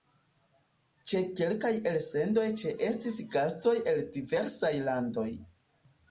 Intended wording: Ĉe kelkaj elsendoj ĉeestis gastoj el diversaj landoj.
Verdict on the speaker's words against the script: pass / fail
pass